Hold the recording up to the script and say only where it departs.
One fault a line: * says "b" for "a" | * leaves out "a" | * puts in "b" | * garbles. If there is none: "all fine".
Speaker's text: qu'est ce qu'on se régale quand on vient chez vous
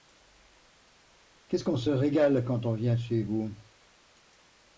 all fine